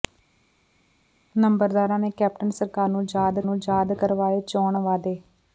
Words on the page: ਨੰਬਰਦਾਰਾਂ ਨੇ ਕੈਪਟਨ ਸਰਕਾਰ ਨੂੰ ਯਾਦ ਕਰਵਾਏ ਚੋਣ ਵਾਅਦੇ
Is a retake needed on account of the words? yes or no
yes